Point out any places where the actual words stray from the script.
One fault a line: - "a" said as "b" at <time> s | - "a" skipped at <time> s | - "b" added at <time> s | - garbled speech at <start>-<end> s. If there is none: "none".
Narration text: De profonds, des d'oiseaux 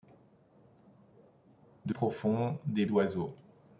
none